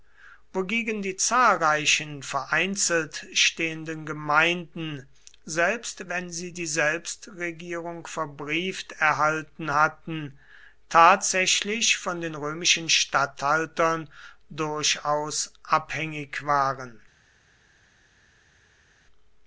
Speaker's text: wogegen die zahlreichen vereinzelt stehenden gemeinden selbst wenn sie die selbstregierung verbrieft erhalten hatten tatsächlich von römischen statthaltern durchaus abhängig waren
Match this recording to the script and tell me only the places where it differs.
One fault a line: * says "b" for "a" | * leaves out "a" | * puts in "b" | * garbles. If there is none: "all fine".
* puts in "den"